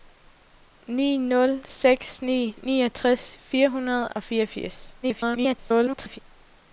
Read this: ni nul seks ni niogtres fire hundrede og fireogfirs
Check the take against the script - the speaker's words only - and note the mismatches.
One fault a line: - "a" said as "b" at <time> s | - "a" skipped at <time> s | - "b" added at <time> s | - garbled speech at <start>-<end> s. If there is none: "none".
- garbled speech at 5.0-6.2 s